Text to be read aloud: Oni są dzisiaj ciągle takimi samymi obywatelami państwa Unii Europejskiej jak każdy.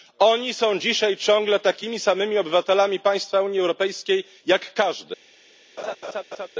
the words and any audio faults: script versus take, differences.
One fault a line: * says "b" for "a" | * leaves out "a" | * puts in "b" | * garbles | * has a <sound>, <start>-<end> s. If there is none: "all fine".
* has a laugh, 5.8-6.5 s